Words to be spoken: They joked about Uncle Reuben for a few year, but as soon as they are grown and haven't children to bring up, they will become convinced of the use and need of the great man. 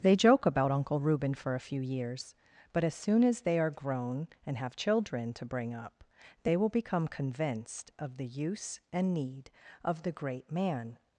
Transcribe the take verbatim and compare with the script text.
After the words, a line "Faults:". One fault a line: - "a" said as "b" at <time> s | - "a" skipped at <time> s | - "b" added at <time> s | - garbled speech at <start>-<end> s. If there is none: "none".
They joke about Uncle Reuben for a few years, but as soon as they are grown and have children to bring up, they will become convinced of the use and need of the great man.
Faults:
- "joked" said as "joke" at 0.1 s
- "year" said as "years" at 1.8 s
- "haven't" said as "have" at 4.6 s